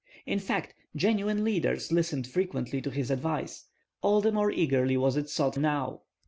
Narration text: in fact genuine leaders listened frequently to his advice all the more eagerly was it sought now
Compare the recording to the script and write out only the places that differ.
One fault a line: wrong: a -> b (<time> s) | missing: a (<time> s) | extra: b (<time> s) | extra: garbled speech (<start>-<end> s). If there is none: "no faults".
no faults